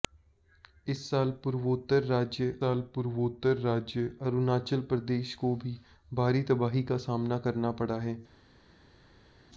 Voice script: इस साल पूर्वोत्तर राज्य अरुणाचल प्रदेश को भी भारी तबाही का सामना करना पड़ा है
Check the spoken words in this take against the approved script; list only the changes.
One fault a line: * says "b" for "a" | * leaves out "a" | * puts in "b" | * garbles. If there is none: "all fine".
* puts in "साल पूर्वोत्तर राज्य"